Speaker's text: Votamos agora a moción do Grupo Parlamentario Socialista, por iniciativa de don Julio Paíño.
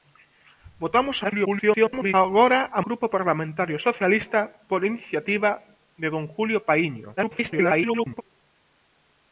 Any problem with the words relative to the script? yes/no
yes